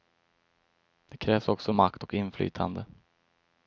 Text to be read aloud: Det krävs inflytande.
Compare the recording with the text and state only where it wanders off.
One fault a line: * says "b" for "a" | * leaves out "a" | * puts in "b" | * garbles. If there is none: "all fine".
* puts in "också makt och"